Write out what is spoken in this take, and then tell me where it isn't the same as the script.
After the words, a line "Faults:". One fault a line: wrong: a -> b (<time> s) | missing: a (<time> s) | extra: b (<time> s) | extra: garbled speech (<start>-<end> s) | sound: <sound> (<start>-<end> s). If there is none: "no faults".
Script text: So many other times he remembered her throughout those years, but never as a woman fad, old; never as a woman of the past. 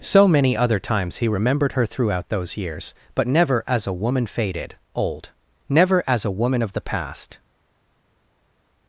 So many other times he remembered her throughout those years, but never as a woman faded, old; never as a woman of the past.
Faults:
wrong: fad -> faded (4.2 s)